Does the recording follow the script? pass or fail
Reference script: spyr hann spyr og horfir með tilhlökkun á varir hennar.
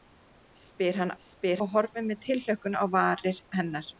pass